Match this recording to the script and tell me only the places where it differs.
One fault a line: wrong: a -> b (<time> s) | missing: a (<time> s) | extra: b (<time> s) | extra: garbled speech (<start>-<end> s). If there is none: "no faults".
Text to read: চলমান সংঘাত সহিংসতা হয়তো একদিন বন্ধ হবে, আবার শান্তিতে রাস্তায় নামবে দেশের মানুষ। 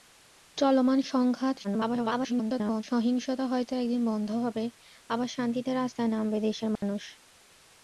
extra: garbled speech (1.6-2.8 s)